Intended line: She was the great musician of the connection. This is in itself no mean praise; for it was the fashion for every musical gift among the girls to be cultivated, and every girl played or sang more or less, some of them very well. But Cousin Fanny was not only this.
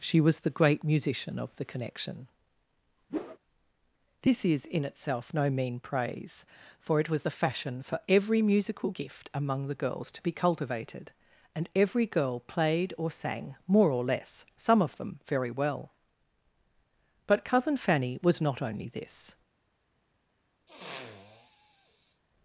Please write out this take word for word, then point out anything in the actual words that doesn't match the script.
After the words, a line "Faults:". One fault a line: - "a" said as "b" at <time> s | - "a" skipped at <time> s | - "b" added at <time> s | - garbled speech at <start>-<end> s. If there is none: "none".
She was the great musician of the connection. This is in itself no mean praise; for it was the fashion for every musical gift among the girls to be cultivated, and every girl played or sang more or less, some of them very well. But Cousin Fanny was not only this.
Faults:
none